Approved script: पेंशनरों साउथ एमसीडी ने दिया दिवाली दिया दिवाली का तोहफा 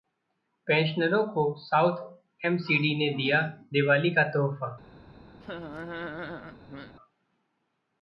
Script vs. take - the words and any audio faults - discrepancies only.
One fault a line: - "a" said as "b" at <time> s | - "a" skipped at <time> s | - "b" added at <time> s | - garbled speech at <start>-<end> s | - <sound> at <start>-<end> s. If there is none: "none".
- "को" added at 1.3 s
- "दिया दिवाली" skipped at 4.1 s
- laugh at 5.4-6.9 s